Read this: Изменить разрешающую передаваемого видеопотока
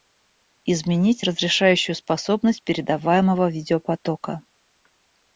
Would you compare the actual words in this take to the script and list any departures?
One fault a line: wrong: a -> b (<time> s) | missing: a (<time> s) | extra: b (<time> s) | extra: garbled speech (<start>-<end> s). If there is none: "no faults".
extra: способность (2.0 s)